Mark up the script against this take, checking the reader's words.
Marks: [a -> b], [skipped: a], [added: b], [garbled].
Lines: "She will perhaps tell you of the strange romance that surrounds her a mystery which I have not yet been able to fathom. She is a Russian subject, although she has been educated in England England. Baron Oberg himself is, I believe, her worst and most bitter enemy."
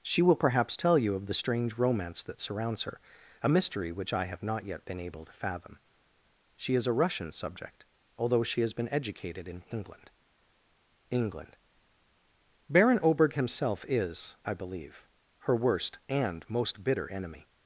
"She will perhaps tell you of the strange romance that surrounds her a mystery which I have not yet been able to fathom. She is a Russian subject, although she has been educated in England England. Baron Oberg himself is, I believe, her worst and most bitter enemy."